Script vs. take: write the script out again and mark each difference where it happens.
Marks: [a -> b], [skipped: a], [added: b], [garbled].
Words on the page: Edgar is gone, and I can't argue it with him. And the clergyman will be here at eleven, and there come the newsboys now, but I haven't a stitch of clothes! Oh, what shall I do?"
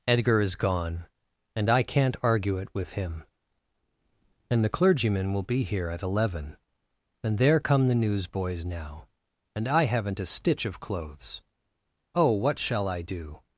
Edgar is gone, and I can't argue it with him. And the clergyman will be here at eleven, and there come the newsboys now, [but -> and] I haven't a stitch of clothes! Oh, what shall I do?"